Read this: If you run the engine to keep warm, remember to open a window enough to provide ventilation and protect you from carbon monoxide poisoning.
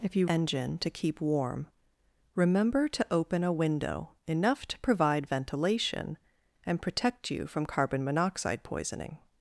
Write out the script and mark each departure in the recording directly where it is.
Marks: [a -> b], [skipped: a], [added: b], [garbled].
If you [skipped: run the] engine to keep warm, remember to open a window enough to provide ventilation and protect you from carbon monoxide poisoning.